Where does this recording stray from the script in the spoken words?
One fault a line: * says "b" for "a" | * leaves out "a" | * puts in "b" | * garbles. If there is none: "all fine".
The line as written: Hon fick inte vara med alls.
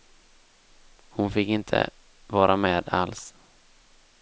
all fine